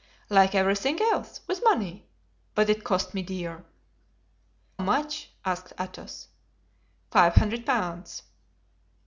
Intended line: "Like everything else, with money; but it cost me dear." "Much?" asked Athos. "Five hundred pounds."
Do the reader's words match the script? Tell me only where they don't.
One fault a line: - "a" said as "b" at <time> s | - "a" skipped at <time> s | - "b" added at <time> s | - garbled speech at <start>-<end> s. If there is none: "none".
none